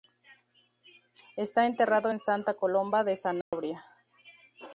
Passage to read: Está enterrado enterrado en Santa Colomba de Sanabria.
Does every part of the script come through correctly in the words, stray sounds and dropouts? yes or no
no